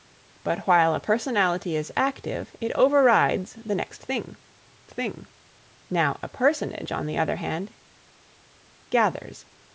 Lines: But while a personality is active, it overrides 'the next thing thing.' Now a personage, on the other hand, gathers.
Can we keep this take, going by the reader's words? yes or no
yes